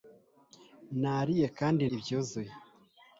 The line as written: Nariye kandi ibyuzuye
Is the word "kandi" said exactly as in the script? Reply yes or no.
yes